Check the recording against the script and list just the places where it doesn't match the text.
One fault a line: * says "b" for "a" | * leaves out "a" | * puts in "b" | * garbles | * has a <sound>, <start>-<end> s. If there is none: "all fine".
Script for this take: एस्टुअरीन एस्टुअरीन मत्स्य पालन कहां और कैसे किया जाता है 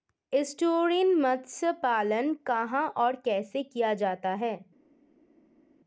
* leaves out "एस्टुअरीन"